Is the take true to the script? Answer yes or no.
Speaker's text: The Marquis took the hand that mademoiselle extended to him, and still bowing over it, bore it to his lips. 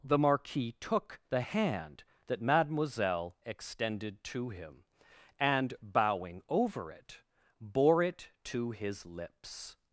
no